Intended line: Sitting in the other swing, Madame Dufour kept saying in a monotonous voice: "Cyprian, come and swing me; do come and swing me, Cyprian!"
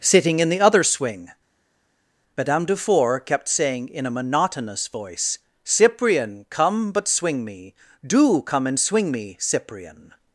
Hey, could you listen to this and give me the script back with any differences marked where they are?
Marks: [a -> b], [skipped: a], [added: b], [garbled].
Sitting in the other swing, Madame Dufour kept saying in a monotonous voice: "Cyprian, come [and -> but] swing me; do come and swing me, Cyprian!"